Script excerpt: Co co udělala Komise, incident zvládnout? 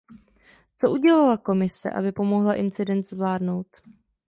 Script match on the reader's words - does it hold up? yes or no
no